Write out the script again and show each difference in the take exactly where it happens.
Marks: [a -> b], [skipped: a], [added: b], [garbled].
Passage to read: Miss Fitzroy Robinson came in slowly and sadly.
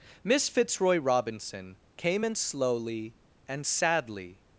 Miss Fitzroy Robinson came in slowly and sadly.